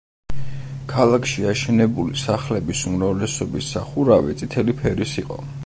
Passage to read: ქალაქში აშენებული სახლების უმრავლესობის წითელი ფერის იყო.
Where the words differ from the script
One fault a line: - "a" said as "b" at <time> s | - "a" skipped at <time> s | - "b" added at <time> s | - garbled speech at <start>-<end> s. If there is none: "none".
- "სახურავი" added at 3.8 s